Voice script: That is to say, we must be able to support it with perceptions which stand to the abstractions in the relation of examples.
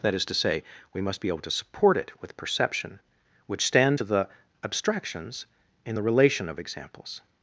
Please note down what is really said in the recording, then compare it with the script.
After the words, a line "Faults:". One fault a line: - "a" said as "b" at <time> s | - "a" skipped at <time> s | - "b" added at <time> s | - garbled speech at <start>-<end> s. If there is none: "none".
That is to say, we must be able to support it with perception which stand to the abstractions in the relation of examples.
Faults:
- "perceptions" said as "perception" at 2.4 s